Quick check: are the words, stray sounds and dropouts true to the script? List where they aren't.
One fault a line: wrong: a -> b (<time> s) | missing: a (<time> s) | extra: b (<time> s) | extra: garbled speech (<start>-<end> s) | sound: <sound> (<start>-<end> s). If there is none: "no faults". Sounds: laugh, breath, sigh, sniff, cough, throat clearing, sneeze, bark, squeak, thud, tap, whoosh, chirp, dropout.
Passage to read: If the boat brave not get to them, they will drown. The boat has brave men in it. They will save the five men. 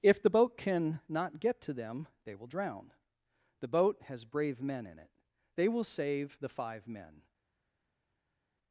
wrong: brave -> can (0.6 s)